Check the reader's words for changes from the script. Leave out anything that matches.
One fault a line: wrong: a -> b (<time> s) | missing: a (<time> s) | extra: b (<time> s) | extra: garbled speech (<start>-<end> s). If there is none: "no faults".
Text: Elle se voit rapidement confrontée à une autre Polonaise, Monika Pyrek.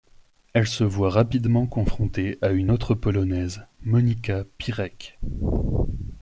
no faults